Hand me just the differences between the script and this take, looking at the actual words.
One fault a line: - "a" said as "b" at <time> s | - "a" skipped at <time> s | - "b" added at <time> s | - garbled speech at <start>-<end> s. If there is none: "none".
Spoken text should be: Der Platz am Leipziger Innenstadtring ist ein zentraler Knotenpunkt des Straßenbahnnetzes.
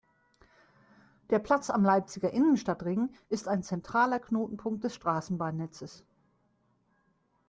none